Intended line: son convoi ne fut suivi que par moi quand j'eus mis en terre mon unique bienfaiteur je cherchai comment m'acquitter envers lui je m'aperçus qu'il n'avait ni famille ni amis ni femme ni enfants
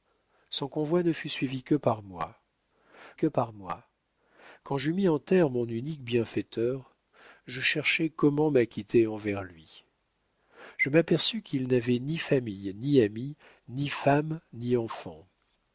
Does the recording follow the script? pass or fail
fail